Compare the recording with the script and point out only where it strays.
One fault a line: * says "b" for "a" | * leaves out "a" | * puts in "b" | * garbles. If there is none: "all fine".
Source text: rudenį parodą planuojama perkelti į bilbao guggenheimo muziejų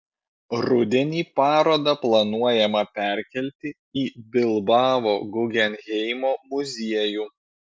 all fine